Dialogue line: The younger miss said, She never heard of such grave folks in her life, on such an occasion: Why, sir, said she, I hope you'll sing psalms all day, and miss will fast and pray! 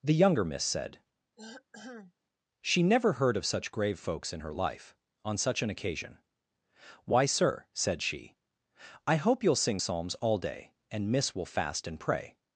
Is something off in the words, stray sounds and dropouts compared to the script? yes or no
yes